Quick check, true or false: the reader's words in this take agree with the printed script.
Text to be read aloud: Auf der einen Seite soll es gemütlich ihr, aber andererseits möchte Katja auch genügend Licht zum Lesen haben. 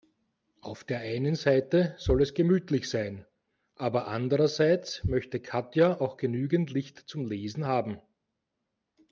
false